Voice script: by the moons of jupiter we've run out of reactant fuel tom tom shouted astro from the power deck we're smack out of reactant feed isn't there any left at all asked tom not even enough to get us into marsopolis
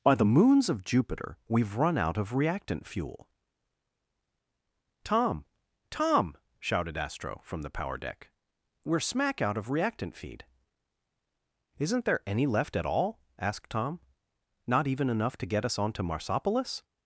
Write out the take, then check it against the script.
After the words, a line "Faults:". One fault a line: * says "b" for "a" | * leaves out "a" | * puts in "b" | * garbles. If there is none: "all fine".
by the moons of jupiter we've run out of reactant fuel tom tom shouted astro from the power deck we're smack out of reactant feed isn't there any left at all asked tom not even enough to get us onto marsopolis
Faults:
* says "onto" for "into"